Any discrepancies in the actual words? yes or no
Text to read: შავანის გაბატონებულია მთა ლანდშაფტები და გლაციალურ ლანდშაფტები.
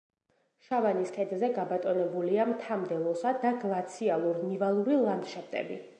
yes